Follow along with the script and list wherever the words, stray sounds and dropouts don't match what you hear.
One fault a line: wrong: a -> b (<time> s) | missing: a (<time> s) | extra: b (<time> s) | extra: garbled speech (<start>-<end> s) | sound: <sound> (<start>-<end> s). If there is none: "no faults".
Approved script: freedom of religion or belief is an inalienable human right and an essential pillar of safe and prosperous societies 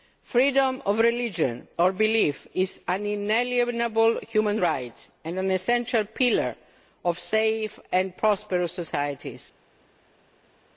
no faults